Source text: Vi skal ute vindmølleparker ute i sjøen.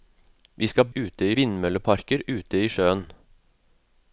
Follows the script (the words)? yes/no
yes